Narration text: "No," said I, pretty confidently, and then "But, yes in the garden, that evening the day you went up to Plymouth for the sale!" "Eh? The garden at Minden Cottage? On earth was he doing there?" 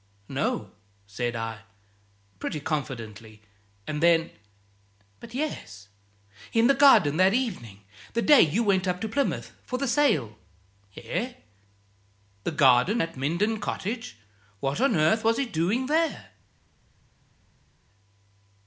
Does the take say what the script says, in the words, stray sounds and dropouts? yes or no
no